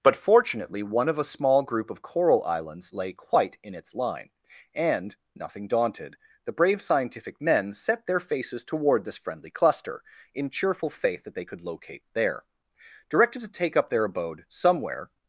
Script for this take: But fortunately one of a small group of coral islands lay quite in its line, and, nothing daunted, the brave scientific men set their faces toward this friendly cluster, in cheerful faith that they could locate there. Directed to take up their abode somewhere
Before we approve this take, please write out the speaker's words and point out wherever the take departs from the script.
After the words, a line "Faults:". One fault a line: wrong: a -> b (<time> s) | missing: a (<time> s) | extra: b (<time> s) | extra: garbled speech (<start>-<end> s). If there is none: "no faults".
But fortunately one of a small group of coral islands lay quite in its line, and, nothing daunted, the brave scientific men set their faces toward this friendly cluster, in cheerful faith that they could locate there. Directed to take up their abode somewhere
Faults:
no faults